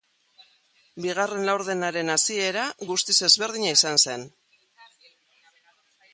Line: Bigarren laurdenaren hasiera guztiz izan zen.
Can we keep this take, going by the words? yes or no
no